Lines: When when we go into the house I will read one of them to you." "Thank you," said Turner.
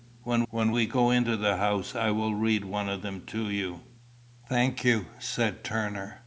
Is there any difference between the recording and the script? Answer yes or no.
no